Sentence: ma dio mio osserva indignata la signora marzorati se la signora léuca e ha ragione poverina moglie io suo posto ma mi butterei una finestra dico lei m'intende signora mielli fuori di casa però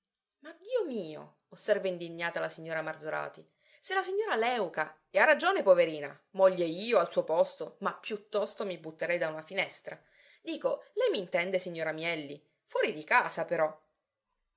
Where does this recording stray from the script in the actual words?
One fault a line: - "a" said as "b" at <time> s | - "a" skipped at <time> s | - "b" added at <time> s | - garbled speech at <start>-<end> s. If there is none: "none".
- "al" added at 7.0 s
- "piuttosto" added at 7.9 s
- "da" added at 9.2 s